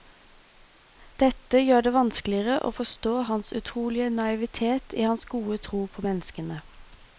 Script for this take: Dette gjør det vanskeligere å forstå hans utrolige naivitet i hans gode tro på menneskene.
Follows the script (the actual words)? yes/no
yes